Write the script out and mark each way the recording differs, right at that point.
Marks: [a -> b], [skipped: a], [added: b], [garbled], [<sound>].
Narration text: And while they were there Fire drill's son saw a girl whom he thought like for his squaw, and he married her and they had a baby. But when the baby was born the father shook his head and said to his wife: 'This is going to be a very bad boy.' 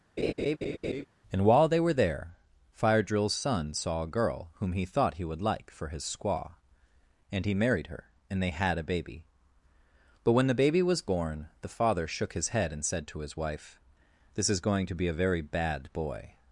[laugh] And while they were there Fire drill's son saw a girl whom he thought [added: he would] like for his squaw, and he married her and they had a baby. But when the baby was born the father shook his head and said to his wife: 'This is going to be a very bad boy.'